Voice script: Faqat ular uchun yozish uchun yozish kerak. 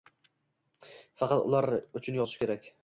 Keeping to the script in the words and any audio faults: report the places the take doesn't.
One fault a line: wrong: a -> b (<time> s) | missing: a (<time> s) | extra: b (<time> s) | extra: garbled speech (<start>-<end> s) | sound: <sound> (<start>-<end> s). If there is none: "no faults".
missing: uchun yozish (2.4 s)